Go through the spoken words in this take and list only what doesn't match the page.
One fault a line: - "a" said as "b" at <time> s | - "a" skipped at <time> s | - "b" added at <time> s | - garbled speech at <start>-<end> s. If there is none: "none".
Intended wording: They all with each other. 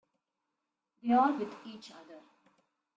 none